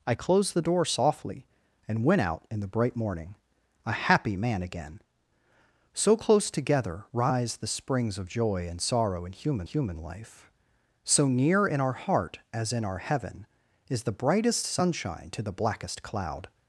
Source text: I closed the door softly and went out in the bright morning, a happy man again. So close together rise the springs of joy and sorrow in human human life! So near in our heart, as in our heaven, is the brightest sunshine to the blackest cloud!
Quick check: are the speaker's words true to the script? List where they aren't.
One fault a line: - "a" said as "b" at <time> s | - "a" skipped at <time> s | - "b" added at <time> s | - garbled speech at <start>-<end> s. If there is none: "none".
none